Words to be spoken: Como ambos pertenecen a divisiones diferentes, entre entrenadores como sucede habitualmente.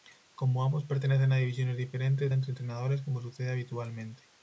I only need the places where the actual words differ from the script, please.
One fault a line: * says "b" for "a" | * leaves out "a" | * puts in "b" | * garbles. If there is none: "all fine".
all fine